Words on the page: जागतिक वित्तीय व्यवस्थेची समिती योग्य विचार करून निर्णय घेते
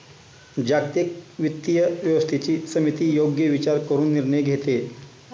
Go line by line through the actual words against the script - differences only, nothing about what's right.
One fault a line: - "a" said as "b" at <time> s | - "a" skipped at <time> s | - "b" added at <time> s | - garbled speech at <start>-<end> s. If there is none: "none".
none